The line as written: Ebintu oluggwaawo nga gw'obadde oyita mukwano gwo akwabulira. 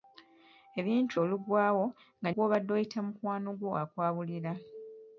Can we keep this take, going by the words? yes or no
yes